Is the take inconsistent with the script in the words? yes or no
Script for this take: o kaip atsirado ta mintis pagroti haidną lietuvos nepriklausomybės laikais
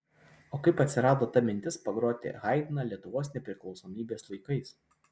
no